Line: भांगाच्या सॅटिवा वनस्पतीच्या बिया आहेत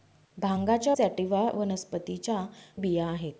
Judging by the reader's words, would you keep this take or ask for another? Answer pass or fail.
pass